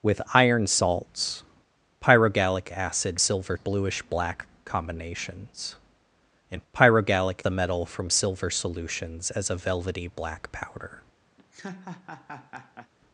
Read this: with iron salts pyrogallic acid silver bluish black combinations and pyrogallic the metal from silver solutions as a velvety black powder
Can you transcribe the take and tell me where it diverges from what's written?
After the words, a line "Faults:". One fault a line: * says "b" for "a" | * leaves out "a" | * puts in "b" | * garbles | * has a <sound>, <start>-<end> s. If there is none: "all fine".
with iron salts pyrogallic acid silver bluish black combinations and pyrogallic the metal from silver solutions as a velvety black powder
Faults:
* has a laugh, 11.4-12.9 s